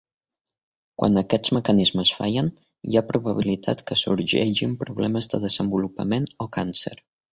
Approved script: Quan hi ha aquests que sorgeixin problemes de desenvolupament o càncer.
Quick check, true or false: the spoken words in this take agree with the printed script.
false